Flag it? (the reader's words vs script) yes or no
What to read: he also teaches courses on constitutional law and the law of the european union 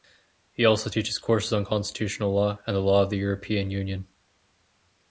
no